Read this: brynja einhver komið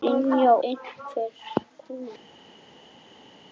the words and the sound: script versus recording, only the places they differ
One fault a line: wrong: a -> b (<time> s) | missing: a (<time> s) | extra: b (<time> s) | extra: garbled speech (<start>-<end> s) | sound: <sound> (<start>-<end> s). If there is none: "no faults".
no faults